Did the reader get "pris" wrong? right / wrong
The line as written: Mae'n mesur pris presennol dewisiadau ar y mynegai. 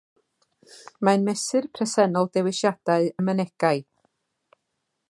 wrong